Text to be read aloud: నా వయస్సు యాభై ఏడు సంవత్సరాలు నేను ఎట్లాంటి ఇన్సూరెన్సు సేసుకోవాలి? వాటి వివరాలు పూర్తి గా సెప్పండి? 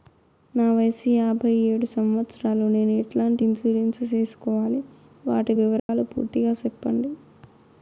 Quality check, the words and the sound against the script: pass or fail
fail